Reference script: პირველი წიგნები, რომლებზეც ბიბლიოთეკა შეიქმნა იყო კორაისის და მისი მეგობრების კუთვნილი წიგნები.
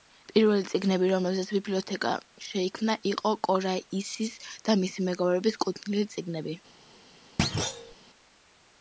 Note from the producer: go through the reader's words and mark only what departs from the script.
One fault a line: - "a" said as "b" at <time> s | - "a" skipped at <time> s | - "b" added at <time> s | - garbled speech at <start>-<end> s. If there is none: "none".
none